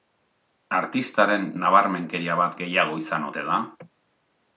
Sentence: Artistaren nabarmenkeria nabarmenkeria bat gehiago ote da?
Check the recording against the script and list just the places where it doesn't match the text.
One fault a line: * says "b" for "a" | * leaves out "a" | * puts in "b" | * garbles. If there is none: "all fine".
* leaves out "nabarmenkeria"
* puts in "izan"